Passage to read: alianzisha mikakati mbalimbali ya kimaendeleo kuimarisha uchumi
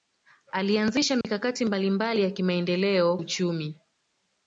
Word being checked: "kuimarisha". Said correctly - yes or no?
no